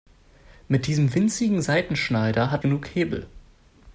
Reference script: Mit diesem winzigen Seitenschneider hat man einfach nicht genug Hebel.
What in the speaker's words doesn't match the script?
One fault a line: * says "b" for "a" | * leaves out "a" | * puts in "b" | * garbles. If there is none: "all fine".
* leaves out "man einfach nicht"